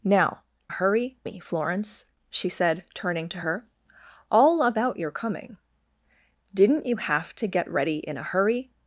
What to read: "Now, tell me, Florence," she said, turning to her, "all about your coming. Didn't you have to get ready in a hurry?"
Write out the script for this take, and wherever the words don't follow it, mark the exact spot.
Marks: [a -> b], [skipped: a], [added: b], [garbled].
"Now, [tell -> hurry] me, Florence," she said, turning to her, "all about your coming. Didn't you have to get ready in a hurry?"